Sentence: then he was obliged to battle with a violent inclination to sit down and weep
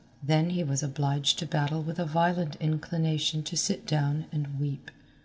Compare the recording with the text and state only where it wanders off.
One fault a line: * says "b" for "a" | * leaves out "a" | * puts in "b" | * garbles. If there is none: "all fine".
all fine